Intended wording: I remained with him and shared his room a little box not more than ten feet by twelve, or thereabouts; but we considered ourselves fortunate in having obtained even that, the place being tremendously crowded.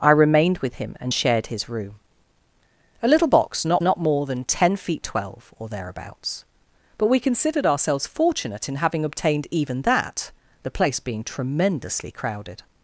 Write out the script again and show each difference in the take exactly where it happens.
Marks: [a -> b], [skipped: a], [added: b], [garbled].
I remained with him and shared his room a little box not [added: not] more than ten feet [skipped: by] twelve, or thereabouts; but we considered ourselves fortunate in having obtained even that, the place being tremendously crowded.